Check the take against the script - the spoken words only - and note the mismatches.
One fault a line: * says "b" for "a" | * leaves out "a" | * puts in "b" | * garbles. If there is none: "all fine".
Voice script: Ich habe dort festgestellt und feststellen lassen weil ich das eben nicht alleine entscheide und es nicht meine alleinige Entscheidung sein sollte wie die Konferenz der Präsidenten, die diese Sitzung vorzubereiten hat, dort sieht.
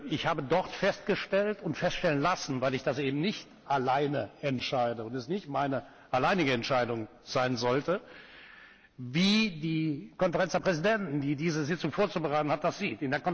* says "das" for "dort"